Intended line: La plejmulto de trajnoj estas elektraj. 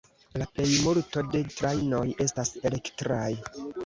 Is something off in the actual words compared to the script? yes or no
no